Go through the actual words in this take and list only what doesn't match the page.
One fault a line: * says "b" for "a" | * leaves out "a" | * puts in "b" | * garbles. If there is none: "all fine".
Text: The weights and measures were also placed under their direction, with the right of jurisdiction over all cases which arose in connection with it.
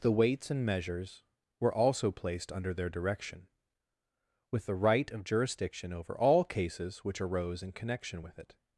all fine